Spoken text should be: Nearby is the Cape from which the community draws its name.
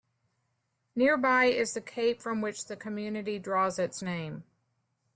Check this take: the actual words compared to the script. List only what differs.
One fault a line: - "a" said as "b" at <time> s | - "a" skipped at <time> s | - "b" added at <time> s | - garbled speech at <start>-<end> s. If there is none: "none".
none